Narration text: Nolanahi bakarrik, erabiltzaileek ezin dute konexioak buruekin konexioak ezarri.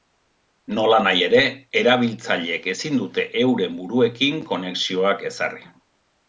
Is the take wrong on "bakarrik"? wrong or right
wrong